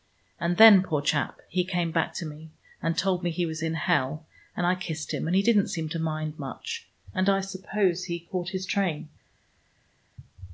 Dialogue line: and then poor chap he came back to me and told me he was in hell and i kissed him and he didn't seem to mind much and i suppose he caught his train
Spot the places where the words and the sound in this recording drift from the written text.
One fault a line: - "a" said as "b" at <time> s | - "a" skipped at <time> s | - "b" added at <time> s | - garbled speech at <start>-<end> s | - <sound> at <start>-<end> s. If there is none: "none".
none